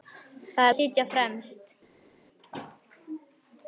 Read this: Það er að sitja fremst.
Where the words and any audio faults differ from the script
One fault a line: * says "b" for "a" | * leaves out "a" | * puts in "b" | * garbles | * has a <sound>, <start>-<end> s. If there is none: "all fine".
all fine